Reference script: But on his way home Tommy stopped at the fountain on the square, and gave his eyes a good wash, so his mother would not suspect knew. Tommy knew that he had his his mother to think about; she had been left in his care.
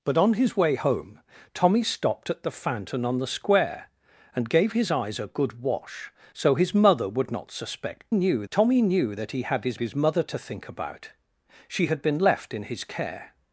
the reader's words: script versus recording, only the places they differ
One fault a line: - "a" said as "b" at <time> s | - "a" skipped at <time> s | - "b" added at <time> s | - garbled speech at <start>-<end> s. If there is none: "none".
none